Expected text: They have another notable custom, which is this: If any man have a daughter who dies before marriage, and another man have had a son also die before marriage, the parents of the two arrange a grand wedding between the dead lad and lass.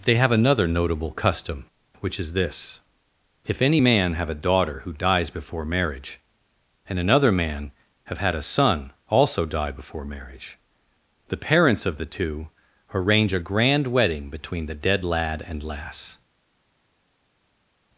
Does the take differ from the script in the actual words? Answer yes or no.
no